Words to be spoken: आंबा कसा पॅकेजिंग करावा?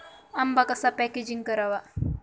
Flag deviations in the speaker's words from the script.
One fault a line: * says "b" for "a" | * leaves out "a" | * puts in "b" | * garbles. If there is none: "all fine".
all fine